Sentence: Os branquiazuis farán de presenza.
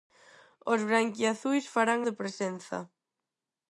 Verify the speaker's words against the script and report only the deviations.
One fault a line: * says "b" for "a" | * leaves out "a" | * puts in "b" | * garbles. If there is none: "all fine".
all fine